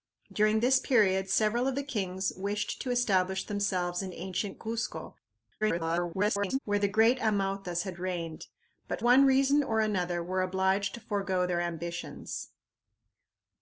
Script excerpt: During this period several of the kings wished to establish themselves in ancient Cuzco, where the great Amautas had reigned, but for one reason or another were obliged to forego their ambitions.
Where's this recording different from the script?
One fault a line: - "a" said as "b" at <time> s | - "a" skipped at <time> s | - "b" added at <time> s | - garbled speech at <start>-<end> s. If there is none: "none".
- garbled speech at 5.6-6.6 s
- "for" skipped at 9.0 s